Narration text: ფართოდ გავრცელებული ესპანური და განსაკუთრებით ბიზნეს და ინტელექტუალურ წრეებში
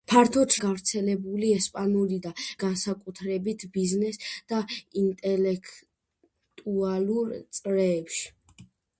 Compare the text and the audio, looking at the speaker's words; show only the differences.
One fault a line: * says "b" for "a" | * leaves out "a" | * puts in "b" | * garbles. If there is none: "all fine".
all fine